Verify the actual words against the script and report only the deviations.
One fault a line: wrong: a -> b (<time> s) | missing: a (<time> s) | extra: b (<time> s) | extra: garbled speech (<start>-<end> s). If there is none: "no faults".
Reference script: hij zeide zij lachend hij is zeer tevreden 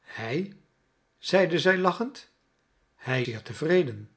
missing: is (3.2 s)